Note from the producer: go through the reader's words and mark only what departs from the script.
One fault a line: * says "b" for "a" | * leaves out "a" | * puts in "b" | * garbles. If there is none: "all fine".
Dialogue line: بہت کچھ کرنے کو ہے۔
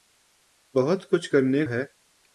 * leaves out "کو"